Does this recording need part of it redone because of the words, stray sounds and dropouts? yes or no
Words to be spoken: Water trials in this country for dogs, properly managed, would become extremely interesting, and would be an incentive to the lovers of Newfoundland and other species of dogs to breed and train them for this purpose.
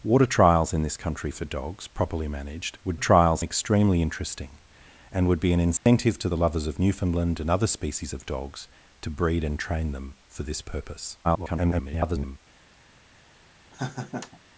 yes